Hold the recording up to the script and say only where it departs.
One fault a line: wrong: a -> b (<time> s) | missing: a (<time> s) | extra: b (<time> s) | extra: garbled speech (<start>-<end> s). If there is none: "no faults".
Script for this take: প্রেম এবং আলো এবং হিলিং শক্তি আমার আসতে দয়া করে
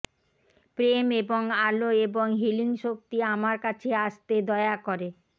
extra: কাছে (3.6 s)